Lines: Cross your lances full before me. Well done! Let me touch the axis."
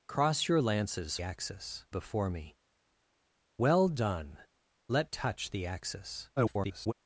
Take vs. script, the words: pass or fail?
fail